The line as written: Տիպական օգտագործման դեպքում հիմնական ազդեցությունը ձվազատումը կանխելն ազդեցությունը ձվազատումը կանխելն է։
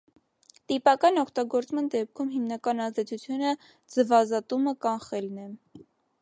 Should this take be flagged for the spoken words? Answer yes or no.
yes